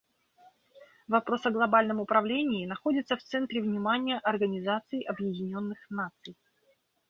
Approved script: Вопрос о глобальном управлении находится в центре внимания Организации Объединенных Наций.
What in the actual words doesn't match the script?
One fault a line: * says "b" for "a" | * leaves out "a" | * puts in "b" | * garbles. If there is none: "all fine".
all fine